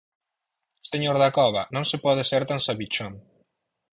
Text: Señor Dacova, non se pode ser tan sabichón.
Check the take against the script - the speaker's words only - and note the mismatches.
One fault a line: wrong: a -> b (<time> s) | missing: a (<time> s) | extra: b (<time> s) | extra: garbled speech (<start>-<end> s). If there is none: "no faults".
no faults